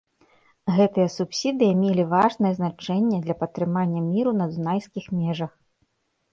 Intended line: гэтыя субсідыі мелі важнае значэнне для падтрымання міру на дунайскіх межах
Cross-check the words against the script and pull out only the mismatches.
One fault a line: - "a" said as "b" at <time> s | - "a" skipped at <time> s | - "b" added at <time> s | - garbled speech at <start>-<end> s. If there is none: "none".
none